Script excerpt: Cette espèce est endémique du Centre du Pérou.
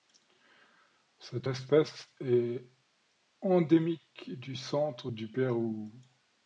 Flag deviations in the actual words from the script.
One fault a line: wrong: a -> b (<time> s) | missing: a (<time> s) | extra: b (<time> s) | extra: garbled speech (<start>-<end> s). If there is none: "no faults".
no faults